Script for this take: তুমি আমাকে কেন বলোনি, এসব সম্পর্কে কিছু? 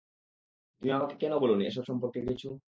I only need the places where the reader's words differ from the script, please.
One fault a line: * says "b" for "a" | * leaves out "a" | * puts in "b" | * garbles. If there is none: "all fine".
all fine